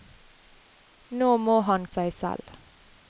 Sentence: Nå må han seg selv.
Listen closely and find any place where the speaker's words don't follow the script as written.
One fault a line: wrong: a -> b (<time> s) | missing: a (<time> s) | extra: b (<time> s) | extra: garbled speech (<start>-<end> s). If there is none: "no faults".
no faults